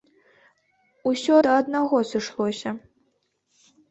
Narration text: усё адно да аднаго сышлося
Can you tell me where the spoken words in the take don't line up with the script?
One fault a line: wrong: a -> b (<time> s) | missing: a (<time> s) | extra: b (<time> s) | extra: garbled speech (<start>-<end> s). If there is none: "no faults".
missing: адно (1.3 s)